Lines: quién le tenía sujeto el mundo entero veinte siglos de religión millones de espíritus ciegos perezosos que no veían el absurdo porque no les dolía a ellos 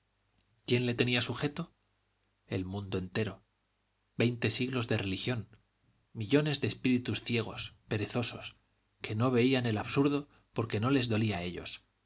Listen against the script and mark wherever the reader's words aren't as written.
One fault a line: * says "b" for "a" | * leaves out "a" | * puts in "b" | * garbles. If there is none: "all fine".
all fine